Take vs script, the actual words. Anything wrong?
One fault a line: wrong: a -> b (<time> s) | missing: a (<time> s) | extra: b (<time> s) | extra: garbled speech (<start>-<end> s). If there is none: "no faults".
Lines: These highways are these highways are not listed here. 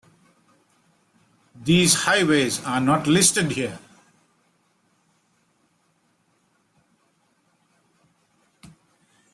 missing: these highways are (2.8 s)